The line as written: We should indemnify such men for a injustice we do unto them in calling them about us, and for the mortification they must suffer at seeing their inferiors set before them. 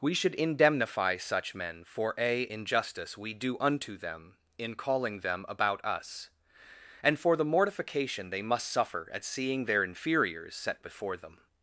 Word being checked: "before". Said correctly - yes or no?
yes